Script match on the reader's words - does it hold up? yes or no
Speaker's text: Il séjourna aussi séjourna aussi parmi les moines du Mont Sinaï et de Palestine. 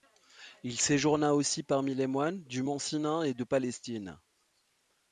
no